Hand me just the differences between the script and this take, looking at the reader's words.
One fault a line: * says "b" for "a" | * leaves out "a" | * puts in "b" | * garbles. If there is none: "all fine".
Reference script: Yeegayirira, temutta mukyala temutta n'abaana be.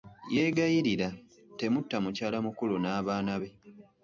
* says "mukulu" for "temutta"